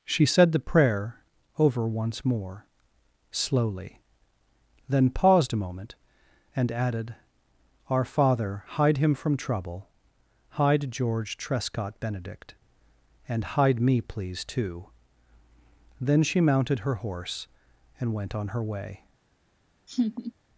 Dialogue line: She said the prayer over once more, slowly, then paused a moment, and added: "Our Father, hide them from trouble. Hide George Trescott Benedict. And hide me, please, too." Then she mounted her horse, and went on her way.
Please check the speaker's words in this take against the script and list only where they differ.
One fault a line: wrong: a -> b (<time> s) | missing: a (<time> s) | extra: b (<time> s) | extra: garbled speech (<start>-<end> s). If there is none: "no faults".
wrong: them -> him (9.0 s)